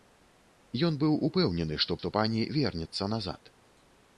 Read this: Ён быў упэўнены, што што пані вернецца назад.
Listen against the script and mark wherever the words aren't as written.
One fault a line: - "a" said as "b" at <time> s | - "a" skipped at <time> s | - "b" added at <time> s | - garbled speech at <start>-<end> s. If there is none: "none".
none